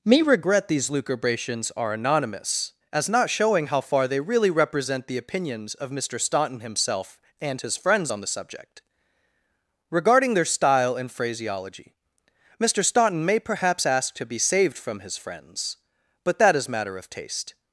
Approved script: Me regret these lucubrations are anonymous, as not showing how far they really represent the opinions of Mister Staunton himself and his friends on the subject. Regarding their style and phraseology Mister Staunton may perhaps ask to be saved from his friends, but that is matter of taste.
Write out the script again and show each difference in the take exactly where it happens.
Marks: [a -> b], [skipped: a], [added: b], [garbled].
Me regret these lucubrations are anonymous, as not showing how far they really represent the opinions of Mister Staunton himself and his friends on the subject. Regarding their style and phraseology Mister Staunton may perhaps ask to be saved from his friends, but that is matter of taste.